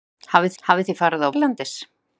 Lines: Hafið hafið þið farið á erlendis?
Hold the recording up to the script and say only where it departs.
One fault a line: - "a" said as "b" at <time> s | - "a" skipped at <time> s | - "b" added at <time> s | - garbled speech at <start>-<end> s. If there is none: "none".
none